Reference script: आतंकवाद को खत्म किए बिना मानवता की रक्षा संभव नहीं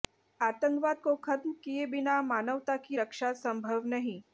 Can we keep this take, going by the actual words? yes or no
yes